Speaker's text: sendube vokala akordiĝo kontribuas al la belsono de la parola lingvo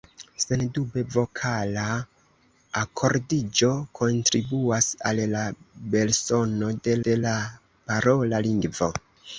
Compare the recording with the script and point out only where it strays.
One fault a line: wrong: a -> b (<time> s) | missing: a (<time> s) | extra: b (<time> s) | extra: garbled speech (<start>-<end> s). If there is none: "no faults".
extra: de (7.1 s)